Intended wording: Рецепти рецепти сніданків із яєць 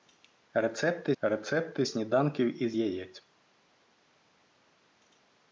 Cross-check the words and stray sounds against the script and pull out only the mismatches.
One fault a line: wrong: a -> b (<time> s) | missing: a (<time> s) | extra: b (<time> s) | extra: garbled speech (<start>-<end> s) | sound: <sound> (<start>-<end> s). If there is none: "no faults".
no faults